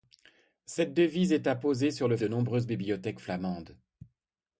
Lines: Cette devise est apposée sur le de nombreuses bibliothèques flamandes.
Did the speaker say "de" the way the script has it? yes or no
yes